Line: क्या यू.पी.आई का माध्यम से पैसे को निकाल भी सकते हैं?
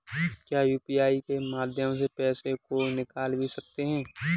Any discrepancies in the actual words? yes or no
yes